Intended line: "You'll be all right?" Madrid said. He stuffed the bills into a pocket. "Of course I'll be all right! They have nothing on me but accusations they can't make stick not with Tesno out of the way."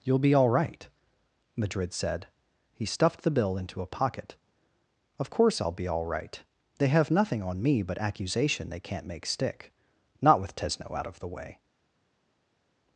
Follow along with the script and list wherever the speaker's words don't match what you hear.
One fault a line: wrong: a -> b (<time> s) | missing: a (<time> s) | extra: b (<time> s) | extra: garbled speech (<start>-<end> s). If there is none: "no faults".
wrong: bills -> bill (3.3 s)
wrong: accusations -> accusation (8.0 s)